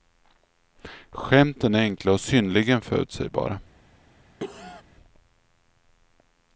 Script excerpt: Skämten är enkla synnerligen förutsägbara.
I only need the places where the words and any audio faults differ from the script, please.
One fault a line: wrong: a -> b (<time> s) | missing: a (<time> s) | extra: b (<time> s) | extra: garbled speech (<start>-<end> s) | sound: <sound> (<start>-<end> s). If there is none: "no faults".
extra: och (2.1 s)
sound: cough (4.4-4.8 s)